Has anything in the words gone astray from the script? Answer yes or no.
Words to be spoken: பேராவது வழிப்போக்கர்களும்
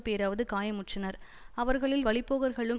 yes